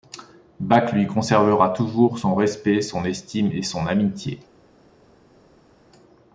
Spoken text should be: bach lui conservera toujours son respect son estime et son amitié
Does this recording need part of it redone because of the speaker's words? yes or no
no